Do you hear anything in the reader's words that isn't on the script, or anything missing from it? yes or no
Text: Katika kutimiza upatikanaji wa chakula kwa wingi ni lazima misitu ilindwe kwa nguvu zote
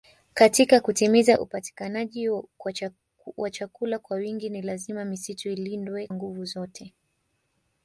yes